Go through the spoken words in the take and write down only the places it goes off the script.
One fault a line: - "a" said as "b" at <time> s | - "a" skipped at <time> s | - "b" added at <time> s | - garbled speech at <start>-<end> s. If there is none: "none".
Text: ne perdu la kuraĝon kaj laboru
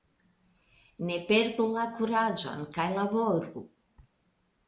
none